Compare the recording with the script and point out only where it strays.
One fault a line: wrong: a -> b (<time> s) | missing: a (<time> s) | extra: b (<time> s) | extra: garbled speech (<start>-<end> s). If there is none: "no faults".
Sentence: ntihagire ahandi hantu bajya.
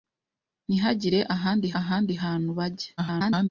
extra: ahandi (1.8 s)
extra: garbled speech (3.0-3.5 s)